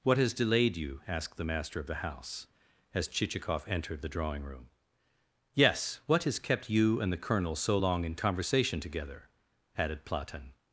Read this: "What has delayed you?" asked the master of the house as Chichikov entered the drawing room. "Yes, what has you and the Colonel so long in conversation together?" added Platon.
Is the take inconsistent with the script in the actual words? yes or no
yes